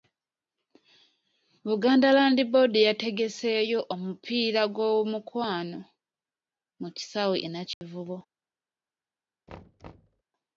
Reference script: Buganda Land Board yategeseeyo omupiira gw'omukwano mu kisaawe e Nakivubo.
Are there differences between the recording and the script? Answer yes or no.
no